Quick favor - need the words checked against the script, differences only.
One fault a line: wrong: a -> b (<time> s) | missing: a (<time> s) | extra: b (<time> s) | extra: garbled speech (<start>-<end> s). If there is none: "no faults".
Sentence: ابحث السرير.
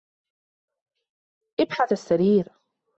no faults